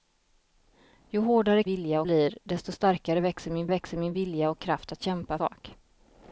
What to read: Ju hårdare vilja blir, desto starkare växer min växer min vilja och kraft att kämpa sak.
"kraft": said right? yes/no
yes